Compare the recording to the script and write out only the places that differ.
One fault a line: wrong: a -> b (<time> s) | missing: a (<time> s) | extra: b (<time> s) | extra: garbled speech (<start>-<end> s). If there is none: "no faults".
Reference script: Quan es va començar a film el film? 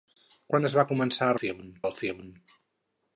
no faults